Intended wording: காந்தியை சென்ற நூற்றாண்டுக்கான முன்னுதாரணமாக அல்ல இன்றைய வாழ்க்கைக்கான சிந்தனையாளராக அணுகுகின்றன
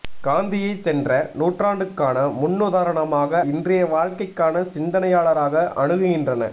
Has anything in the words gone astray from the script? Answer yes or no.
yes